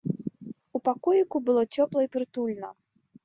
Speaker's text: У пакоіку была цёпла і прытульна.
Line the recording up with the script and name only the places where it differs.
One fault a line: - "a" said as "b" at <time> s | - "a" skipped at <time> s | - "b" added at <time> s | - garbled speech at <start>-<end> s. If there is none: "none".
- "была" said as "было" at 1.5 s